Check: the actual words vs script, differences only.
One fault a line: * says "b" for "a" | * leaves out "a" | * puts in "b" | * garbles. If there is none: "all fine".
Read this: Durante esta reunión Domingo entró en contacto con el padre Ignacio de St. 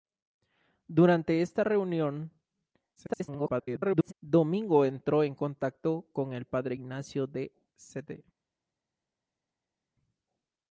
* garbles